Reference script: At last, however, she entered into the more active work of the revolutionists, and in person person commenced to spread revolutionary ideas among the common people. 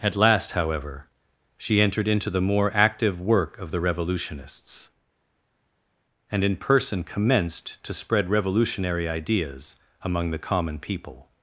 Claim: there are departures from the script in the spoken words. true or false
true